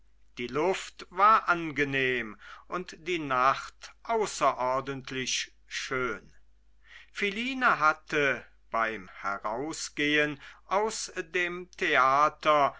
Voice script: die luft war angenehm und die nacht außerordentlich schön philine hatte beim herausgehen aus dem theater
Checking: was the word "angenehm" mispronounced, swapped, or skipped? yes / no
no